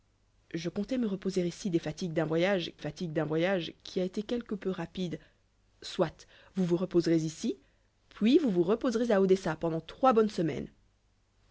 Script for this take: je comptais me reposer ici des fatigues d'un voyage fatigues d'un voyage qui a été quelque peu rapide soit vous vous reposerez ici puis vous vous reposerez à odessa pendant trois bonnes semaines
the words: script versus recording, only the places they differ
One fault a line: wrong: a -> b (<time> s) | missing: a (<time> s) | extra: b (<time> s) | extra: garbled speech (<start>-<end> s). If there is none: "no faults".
no faults